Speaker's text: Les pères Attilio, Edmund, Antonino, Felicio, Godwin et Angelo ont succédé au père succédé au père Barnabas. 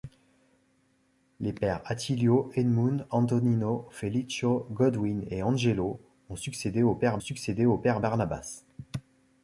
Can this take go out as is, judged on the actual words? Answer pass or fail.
pass